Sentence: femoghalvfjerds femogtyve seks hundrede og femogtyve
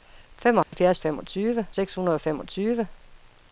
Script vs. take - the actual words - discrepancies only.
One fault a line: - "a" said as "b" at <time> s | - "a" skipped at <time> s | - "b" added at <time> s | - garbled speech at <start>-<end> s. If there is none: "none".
none